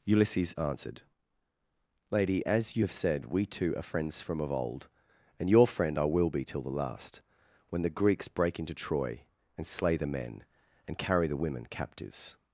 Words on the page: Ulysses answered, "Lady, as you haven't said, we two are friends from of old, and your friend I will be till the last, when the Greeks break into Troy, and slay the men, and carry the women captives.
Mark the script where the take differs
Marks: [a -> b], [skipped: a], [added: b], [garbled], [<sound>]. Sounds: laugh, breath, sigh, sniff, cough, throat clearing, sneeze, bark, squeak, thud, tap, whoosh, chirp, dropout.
Ulysses answered, "Lady, as you [haven't -> have] said, we two are friends from of old, and your friend I will be till the last, when the Greeks break into Troy, and slay the men, and carry the women captives.